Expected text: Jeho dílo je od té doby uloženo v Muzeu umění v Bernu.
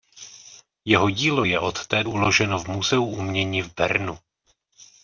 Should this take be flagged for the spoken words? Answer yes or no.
yes